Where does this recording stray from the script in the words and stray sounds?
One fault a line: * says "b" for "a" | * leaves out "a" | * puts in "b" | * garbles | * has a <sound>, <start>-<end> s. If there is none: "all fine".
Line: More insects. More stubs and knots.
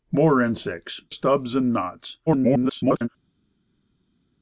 * leaves out "More"
* garbles